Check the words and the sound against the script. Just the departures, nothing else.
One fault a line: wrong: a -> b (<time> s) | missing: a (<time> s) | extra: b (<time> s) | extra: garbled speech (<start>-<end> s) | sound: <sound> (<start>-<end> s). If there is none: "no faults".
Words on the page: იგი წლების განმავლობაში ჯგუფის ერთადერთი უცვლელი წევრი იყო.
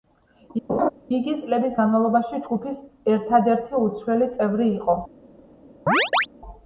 sound: laugh (0.7-0.9 s)
sound: chirp (5.9-6.3 s)